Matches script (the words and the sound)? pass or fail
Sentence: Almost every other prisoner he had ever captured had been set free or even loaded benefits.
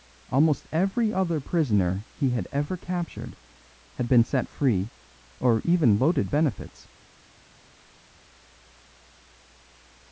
pass